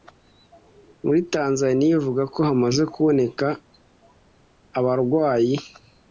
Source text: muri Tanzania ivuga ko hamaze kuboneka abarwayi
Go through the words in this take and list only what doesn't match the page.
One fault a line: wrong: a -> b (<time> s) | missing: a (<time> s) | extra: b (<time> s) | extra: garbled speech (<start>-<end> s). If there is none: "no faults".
no faults